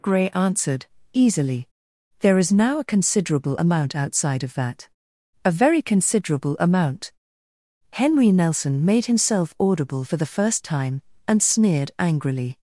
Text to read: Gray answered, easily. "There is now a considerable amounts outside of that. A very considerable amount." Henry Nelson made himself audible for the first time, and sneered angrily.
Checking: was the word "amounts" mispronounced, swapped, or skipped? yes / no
yes